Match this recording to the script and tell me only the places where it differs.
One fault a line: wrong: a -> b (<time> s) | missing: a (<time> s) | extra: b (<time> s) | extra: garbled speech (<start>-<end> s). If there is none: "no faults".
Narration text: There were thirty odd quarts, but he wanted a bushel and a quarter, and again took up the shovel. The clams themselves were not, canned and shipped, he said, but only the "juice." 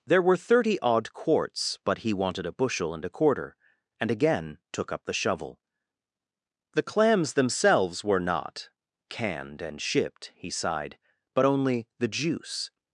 wrong: said -> sighed (10.5 s)